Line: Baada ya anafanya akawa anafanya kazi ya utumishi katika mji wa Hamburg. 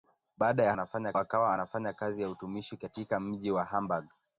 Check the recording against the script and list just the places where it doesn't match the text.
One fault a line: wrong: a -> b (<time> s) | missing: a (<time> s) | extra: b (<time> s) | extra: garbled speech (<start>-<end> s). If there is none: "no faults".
no faults